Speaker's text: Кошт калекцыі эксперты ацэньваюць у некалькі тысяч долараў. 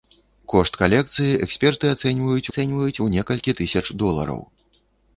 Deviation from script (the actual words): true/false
true